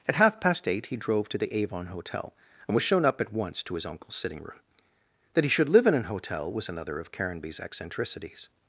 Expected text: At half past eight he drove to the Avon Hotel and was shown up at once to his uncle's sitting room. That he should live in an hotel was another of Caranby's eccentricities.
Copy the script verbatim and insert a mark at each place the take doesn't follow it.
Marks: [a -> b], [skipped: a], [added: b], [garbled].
At half past eight he drove to the Avon Hotel and was shown up at once to his uncle's sitting room. That he should live in an hotel was another of Caranby's eccentricities.